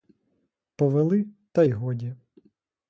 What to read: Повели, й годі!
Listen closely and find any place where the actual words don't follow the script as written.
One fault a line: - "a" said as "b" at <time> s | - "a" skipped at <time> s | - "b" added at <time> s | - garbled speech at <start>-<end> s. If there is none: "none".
- "та" added at 1.5 s